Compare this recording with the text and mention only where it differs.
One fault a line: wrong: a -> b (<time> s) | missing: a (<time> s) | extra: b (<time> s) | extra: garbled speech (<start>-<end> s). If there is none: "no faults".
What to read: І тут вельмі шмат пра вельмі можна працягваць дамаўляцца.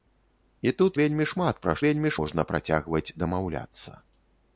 no faults